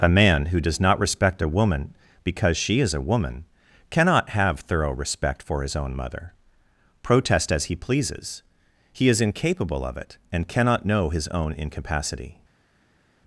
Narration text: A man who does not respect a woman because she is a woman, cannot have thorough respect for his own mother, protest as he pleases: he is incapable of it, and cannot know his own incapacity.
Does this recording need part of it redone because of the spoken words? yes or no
no